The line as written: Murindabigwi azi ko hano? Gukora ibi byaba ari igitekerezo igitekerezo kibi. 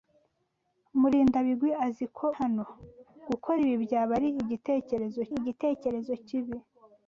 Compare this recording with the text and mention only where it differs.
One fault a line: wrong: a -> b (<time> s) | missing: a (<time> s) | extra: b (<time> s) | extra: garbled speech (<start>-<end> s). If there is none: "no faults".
no faults